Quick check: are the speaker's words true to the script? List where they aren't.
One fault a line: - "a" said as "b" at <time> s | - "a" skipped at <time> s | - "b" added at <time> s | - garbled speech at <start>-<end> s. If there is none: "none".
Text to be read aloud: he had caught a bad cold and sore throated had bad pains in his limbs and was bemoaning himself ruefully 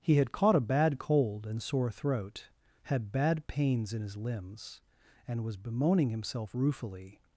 - "throated" said as "throat" at 1.9 s